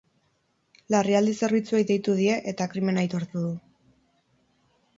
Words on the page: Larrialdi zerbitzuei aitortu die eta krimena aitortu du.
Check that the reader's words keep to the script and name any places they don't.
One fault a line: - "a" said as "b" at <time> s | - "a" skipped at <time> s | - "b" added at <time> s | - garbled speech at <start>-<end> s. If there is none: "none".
- "aitortu" said as "deitu" at 1.9 s